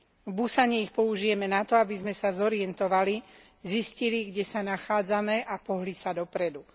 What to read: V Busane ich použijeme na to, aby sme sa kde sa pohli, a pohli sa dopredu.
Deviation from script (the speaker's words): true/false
true